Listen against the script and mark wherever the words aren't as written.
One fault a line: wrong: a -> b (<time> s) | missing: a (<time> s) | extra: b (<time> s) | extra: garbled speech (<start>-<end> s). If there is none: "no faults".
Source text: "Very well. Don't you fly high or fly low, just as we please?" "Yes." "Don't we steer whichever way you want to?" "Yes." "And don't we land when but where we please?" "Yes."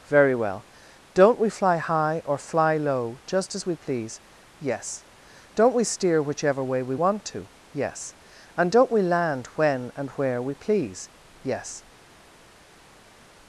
wrong: you -> we (1.4 s)
wrong: you -> we (6.8 s)
wrong: but -> and (9.9 s)